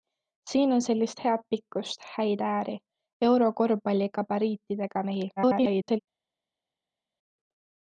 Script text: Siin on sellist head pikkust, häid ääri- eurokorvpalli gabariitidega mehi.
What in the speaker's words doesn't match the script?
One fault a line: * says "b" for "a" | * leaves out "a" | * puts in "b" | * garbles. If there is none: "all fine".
* garbles